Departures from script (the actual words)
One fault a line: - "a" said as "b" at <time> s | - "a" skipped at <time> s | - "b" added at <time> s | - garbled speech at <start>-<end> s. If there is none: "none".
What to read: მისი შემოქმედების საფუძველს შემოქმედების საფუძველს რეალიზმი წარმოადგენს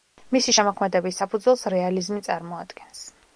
- "შემოქმედების საფუძველს" skipped at 1.6 s